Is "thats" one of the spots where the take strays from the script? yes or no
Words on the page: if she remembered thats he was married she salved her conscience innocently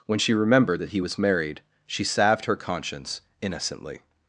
yes